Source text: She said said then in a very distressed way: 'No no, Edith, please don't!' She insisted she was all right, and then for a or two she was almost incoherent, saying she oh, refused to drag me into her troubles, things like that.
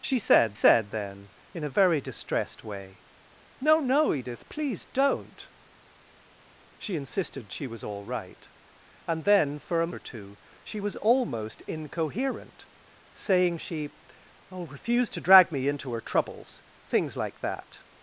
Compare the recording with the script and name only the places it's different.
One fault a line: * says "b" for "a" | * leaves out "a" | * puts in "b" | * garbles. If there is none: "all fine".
all fine